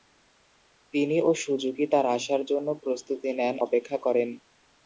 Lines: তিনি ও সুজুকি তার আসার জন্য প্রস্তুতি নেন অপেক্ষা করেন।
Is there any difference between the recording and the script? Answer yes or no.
no